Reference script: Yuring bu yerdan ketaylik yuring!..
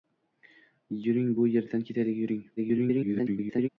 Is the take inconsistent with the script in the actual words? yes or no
yes